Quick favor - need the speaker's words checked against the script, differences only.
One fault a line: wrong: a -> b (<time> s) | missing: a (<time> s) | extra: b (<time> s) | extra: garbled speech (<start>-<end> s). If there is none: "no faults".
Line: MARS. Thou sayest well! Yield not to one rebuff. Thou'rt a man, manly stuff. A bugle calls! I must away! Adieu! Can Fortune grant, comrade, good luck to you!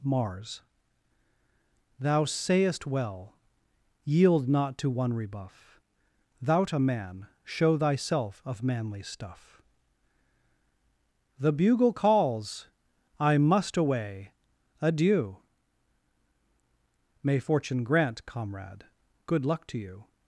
extra: show thyself of (7.4 s)
wrong: A -> The (11.4 s)
wrong: Can -> May (17.2 s)